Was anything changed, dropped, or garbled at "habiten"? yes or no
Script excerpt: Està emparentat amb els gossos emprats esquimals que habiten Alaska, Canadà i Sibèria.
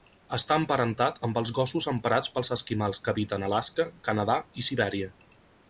no